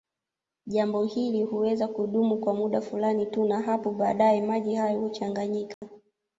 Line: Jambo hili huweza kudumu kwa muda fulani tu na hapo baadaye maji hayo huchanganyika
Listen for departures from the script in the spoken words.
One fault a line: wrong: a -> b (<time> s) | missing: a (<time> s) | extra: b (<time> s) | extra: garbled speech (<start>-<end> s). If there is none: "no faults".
no faults